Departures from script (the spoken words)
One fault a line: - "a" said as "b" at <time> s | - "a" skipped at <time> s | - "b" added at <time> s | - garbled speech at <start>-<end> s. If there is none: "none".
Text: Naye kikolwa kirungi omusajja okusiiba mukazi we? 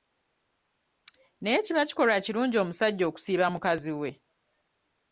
- "kiba" added at 1.6 s